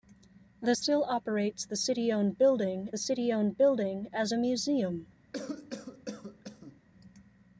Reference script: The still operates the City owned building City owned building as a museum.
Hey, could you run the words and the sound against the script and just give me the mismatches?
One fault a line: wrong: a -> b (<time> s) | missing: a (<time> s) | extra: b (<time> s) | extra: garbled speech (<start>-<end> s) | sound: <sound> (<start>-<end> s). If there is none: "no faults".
sound: cough (5.3-6.8 s)